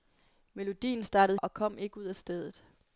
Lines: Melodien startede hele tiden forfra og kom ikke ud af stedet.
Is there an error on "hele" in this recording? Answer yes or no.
yes